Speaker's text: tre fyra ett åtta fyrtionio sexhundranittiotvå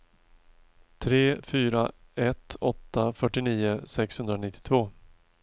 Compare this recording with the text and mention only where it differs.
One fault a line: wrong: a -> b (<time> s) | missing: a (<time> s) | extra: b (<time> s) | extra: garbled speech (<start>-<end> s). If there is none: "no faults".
no faults